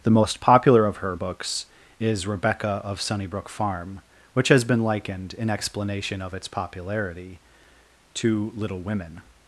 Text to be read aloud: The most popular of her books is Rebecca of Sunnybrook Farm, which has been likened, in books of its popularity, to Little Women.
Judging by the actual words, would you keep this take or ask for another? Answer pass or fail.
fail